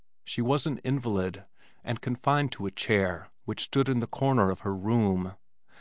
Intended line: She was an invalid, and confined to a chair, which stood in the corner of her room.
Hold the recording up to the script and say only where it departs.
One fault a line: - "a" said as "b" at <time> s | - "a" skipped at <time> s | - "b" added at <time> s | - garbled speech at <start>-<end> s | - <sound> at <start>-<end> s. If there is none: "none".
none